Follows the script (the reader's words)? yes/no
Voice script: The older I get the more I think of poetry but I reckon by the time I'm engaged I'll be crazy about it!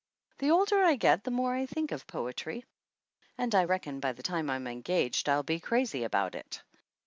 no